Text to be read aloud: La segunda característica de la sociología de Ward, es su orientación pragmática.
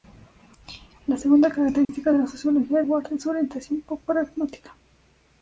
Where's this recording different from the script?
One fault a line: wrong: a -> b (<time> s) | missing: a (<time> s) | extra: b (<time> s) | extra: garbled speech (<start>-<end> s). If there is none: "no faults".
missing: de (2.8 s)